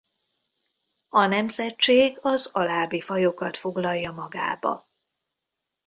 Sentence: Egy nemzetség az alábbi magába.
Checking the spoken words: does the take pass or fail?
fail